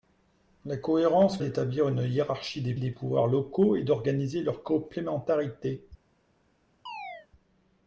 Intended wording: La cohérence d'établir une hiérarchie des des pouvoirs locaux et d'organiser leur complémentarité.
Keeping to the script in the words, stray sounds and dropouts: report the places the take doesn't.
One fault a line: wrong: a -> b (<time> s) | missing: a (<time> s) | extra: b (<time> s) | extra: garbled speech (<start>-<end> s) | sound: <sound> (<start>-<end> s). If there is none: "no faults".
sound: chirp (6.9-7.3 s)